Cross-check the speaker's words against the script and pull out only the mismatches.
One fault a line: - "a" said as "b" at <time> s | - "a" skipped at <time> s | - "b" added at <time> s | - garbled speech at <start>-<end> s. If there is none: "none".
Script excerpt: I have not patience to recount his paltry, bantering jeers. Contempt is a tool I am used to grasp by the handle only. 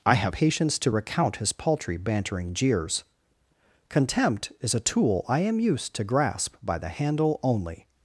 - "not" skipped at 0.3 s